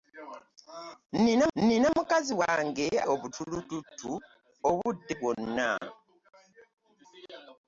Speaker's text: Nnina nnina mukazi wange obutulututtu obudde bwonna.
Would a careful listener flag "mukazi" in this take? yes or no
no